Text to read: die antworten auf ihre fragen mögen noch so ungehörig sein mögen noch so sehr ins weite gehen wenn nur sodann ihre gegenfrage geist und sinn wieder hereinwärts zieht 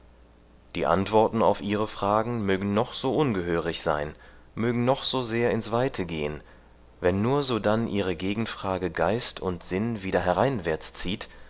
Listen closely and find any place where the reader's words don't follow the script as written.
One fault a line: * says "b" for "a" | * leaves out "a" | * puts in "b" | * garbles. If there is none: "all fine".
all fine